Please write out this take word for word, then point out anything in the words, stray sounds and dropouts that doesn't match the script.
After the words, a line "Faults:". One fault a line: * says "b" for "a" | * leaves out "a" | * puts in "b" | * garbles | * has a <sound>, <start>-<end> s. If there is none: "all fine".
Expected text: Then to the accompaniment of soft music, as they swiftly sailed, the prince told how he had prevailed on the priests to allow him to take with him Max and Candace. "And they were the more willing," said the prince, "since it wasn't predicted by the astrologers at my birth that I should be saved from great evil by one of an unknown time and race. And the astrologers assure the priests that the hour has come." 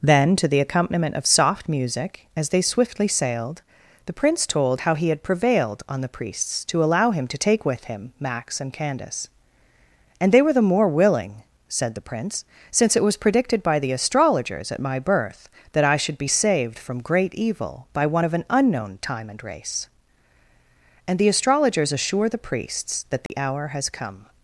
Then to the accompaniment of soft music, as they swiftly sailed, the prince told how he had prevailed on the priests to allow him to take with him Max and Candace. "And they were the more willing," said the prince, "since it was predicted by the astrologers at my birth that I should be saved from great evil by one of an unknown time and race. And the astrologers assure the priests that the hour has come."
Faults:
* says "was" for "wasn't"
* has a dropout, 23.3-23.3 s